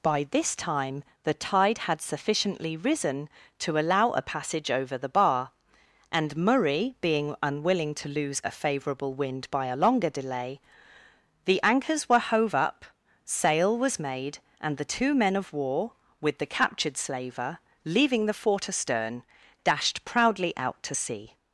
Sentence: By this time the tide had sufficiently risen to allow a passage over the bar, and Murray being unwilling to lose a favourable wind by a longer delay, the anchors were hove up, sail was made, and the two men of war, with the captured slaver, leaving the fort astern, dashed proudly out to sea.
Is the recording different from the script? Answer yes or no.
no